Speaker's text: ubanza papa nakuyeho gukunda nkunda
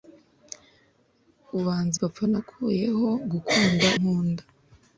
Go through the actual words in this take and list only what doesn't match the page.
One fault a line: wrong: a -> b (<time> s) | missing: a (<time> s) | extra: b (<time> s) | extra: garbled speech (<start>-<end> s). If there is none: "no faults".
no faults